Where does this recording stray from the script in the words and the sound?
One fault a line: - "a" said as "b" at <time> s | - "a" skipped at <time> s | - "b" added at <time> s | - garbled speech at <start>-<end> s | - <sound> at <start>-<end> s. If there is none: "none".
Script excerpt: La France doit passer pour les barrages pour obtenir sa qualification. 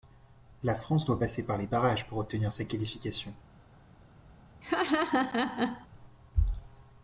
- "pour" said as "par" at 1.5 s
- laugh at 4.6-5.9 s